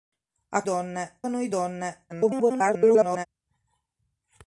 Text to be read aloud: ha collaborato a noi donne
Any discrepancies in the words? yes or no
yes